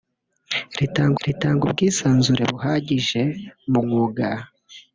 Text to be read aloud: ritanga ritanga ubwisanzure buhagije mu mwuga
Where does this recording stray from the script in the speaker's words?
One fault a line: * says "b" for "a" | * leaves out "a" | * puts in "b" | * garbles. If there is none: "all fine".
all fine